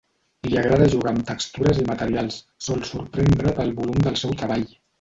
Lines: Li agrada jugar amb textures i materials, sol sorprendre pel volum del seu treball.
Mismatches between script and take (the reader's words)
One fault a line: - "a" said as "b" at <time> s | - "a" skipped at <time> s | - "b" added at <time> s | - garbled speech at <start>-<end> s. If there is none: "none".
none